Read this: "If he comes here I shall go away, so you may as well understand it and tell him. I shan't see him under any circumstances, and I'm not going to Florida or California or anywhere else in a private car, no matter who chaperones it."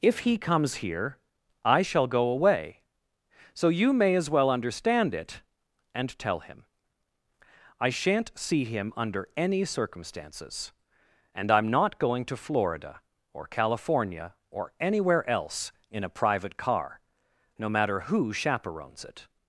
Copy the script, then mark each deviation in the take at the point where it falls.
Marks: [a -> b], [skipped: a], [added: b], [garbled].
"If he comes here I shall go away, so you may as well understand it and tell him. I shan't see him under any circumstances, and I'm not going to Florida or California or anywhere else in a private car, no matter who chaperones it."